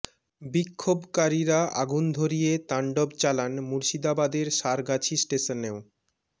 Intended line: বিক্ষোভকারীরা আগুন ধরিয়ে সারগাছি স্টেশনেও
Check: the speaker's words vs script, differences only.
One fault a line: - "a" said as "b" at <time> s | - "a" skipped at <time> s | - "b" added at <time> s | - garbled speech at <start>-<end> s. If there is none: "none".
- "তাণ্ডব চালান মুর্শিদাবাদের" added at 2.7 s